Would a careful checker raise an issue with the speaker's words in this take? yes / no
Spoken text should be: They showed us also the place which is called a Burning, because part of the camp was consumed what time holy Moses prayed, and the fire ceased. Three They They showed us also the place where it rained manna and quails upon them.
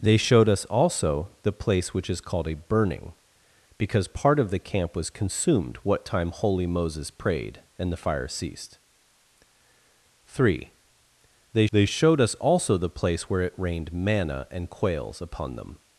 no